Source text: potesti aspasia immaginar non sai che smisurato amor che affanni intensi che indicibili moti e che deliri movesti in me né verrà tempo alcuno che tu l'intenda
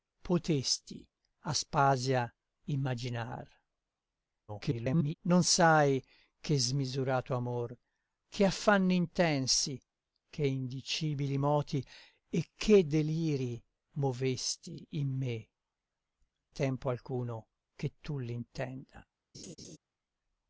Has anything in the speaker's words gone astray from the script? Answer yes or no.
yes